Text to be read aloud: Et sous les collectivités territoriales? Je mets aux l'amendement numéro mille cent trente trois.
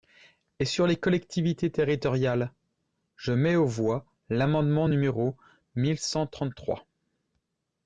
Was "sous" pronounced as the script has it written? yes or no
no